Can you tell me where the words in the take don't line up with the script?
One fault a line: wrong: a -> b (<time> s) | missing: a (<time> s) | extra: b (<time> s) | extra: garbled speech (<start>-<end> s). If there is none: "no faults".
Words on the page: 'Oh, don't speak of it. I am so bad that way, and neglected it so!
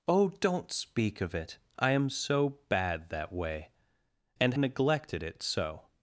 no faults